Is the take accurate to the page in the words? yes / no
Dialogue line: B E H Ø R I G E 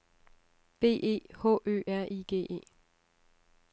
yes